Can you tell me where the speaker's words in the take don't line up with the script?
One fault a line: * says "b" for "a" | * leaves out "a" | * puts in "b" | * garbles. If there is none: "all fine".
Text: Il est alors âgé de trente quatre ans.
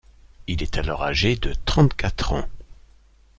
all fine